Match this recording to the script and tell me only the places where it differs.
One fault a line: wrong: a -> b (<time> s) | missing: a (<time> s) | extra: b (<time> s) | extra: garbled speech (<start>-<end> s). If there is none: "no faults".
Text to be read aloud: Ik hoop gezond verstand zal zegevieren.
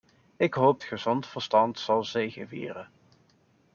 no faults